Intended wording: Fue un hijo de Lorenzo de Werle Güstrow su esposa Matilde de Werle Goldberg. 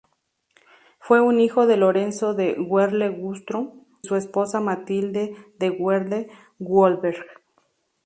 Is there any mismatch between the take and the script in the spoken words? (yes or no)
no